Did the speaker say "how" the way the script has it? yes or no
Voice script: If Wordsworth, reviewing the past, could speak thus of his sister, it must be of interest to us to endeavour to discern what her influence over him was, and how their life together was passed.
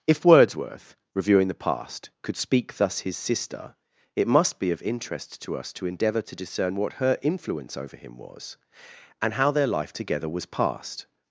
yes